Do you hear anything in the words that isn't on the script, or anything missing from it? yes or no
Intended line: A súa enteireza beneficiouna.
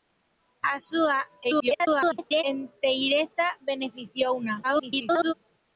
yes